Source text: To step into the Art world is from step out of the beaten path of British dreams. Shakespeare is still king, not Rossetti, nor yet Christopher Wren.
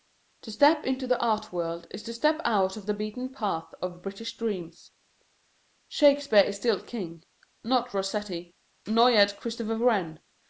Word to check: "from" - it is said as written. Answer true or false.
false